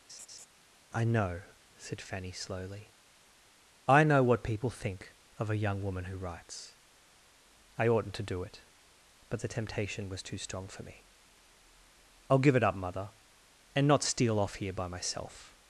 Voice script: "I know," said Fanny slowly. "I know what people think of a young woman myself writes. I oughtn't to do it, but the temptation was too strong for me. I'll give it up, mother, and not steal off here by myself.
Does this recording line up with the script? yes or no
no